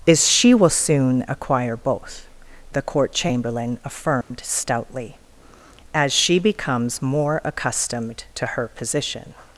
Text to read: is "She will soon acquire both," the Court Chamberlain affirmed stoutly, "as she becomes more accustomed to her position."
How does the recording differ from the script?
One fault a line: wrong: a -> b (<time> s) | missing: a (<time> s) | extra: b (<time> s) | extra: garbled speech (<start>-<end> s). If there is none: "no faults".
no faults